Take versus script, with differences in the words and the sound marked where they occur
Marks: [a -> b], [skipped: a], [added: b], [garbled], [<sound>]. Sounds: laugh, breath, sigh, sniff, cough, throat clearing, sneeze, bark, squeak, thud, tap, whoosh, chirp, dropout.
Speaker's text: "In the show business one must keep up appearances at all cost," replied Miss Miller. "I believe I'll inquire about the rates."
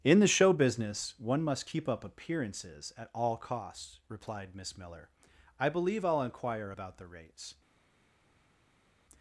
"In the show business one must keep up appearances at all [cost," -> costs] replied Miss Miller. "I believe I'll inquire about the rates."